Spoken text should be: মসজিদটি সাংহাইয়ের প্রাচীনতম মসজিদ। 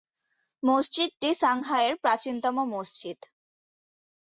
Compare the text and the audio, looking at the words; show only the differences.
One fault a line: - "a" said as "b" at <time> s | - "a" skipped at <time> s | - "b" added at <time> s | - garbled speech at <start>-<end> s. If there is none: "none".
none